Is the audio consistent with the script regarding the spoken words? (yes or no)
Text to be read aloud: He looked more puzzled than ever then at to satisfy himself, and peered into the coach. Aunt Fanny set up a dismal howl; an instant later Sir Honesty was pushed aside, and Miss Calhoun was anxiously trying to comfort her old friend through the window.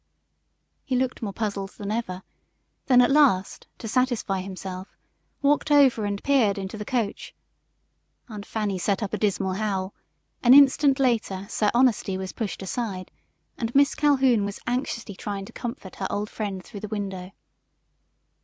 no